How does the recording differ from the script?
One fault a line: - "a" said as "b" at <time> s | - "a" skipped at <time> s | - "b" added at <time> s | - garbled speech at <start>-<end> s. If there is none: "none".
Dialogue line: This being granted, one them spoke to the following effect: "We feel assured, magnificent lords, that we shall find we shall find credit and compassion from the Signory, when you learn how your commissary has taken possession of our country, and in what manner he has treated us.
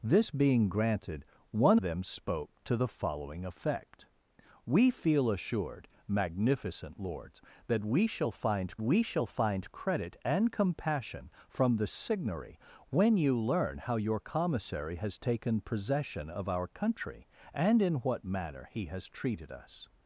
none